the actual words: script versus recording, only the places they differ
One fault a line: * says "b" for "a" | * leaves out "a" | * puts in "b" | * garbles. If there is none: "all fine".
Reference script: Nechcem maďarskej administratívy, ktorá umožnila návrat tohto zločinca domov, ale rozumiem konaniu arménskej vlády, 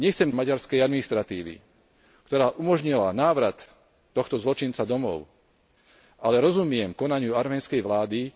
all fine